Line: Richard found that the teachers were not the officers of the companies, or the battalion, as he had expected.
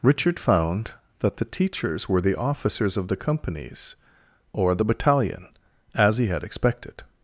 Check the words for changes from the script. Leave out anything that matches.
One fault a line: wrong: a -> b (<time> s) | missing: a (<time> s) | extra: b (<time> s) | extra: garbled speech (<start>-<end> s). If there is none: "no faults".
missing: not (2.2 s)